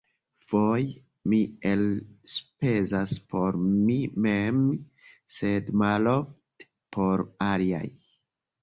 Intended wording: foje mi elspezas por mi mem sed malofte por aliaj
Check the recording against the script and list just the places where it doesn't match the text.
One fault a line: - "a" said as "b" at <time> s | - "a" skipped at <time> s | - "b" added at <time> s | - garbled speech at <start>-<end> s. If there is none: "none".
none